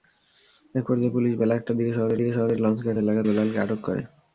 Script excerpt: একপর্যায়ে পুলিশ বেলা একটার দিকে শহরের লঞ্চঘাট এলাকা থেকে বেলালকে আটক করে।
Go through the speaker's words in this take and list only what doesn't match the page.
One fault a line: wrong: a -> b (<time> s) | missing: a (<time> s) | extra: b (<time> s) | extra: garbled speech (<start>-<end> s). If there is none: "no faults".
extra: দিকে শহরের (2.2 s)
missing: থেকে (3.2 s)